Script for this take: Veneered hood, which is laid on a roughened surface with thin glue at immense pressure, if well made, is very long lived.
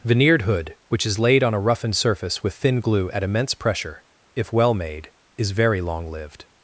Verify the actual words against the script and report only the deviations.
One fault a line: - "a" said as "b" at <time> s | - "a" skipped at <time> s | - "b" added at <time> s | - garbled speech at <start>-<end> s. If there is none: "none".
none